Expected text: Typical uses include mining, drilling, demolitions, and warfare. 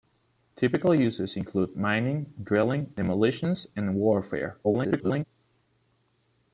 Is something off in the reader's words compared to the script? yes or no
yes